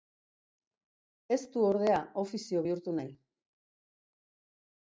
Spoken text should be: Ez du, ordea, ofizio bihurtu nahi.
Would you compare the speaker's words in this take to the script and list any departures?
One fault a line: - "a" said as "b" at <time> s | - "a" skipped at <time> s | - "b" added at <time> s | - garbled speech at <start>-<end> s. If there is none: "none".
none